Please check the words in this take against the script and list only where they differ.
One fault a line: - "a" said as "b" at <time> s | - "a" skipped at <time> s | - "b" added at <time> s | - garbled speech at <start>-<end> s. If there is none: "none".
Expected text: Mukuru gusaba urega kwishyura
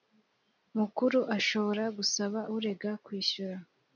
- "ashobora" added at 1.4 s